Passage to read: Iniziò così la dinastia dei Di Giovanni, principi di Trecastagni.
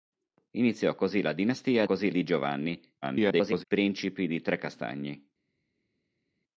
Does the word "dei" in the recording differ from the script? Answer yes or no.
yes